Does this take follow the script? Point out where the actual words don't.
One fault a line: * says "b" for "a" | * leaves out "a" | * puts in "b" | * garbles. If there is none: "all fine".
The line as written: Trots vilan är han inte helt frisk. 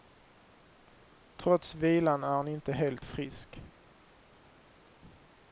all fine